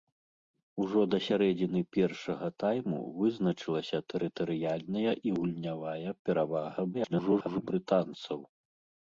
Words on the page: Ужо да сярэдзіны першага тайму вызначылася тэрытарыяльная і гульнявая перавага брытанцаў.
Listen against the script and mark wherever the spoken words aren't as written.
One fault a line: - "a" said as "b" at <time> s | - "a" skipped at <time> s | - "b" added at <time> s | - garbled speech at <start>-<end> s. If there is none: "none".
- garbled speech at 6.9-7.7 s